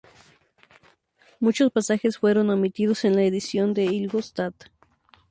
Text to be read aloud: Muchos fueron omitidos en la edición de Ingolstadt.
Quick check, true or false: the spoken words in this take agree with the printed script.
false